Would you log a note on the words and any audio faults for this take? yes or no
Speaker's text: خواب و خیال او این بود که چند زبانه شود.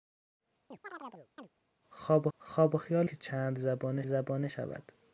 yes